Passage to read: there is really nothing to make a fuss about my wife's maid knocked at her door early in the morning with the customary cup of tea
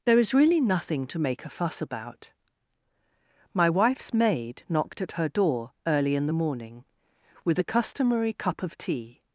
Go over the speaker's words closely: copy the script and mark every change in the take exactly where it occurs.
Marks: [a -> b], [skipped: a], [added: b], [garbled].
there is really nothing to make a fuss about my wife's maid knocked at her door early in the morning with the customary cup of tea